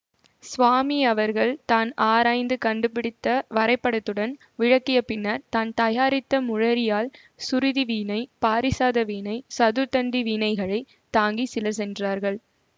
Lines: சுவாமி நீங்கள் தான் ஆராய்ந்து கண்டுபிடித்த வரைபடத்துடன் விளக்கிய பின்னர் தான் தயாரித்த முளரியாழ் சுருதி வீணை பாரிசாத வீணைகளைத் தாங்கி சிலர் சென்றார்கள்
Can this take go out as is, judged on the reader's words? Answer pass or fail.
fail